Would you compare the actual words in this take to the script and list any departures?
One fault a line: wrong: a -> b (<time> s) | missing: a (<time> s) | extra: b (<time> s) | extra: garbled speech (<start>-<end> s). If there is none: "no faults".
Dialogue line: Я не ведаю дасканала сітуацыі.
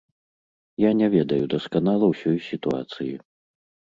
extra: ўсёй (2.1 s)